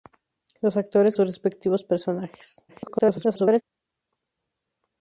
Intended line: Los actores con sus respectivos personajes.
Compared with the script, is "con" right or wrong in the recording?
wrong